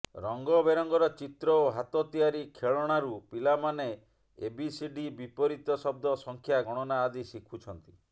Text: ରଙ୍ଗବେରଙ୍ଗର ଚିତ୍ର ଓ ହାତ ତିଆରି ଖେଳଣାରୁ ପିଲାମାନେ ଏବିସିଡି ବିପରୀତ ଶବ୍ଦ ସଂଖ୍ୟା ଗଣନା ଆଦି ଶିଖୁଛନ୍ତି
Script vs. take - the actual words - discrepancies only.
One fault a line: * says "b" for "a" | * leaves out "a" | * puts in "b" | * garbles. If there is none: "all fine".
all fine